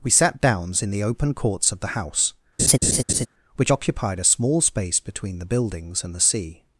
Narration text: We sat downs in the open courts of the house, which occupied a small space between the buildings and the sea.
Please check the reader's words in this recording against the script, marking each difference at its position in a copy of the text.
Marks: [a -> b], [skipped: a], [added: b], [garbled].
We sat downs in the open courts of the house, which occupied a small space between the buildings and the sea.